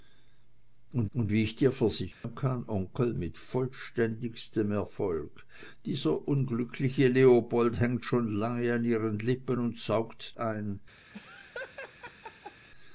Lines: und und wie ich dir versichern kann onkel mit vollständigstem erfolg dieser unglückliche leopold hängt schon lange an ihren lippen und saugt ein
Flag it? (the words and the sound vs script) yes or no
yes